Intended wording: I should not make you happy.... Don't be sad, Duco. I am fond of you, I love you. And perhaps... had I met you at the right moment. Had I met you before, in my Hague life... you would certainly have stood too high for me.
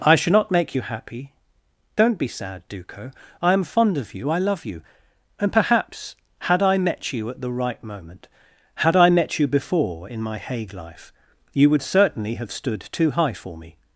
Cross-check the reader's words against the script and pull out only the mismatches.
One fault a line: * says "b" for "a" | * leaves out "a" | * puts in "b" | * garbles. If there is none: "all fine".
all fine